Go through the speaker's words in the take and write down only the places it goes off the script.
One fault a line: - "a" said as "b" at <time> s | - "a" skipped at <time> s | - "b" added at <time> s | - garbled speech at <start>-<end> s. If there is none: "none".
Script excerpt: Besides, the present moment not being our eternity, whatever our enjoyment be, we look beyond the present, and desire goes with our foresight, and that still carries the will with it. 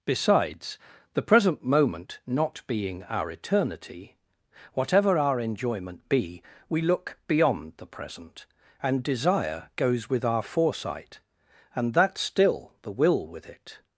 - "carries" skipped at 12.7 s